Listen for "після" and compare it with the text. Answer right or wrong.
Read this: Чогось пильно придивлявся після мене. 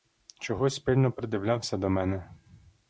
wrong